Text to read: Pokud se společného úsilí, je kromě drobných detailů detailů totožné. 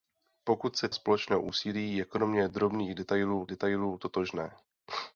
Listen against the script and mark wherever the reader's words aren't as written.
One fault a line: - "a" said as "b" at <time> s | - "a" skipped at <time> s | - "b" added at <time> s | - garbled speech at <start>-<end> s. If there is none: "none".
none